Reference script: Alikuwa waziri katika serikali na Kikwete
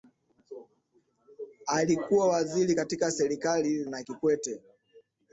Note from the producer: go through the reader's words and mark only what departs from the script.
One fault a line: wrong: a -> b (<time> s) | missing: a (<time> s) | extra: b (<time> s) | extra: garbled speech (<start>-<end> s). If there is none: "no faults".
no faults